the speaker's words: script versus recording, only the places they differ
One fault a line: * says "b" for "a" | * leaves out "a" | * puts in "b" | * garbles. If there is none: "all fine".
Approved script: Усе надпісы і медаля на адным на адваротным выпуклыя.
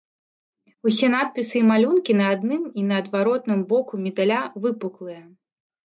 * says "малюнкі" for "медаля"
* puts in "і"
* puts in "боку медаля"